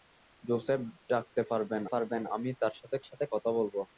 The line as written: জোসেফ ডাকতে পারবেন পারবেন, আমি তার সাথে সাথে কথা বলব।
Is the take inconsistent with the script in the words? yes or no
no